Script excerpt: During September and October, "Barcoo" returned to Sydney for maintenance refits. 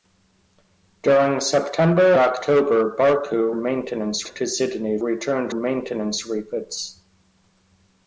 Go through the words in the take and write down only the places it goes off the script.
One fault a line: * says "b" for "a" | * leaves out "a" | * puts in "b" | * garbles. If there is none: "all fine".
* leaves out "and"
* says "maintenance" for "returned"
* says "returned" for "for"